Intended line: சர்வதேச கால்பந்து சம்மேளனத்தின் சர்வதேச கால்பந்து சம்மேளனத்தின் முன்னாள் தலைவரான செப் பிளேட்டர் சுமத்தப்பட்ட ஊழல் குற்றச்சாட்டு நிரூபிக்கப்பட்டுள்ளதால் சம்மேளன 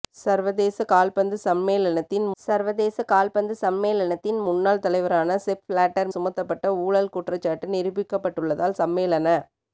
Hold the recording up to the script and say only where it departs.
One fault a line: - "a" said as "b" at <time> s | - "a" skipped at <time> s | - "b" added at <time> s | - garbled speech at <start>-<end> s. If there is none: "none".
none